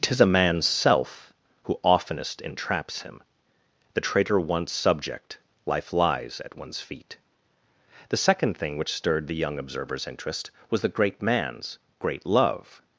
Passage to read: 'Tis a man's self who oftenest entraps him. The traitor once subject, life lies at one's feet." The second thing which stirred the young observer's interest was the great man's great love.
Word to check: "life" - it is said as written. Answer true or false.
true